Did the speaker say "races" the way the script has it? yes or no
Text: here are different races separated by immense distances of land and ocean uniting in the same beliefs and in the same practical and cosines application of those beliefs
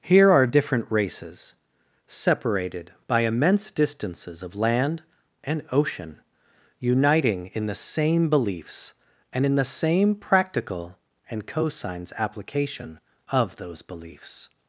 yes